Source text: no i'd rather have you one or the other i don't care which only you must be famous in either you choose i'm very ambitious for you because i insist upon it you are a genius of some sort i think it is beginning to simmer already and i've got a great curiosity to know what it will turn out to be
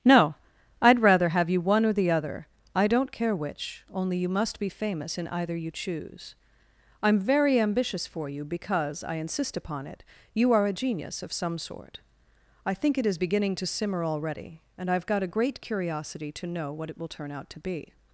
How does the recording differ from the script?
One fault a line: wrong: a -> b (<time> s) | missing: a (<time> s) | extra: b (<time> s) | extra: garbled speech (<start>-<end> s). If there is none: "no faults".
no faults